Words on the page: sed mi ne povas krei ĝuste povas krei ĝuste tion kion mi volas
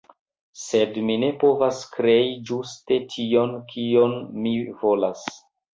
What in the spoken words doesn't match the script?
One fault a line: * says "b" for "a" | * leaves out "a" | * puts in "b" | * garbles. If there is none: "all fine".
* leaves out "povas krei ĝuste"